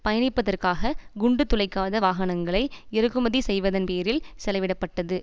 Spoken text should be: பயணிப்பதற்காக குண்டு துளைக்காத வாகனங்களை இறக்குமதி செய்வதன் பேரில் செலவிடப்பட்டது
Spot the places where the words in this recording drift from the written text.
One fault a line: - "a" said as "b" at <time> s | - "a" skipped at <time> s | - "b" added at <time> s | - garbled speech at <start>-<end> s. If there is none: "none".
none